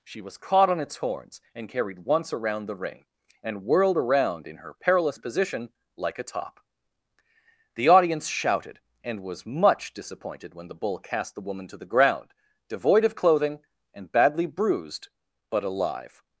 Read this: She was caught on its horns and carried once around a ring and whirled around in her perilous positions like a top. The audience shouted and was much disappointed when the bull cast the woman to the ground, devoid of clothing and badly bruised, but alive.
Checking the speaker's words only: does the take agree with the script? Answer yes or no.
no